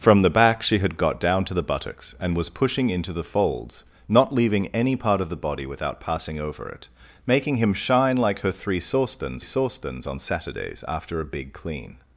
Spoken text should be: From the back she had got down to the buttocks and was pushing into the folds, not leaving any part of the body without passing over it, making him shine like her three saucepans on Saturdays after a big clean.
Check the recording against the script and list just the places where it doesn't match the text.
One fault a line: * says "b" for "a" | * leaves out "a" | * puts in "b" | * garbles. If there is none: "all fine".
* puts in "saucepans"